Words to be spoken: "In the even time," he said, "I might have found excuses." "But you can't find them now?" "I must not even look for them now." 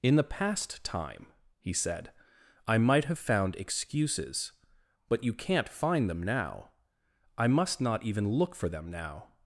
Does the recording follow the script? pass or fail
fail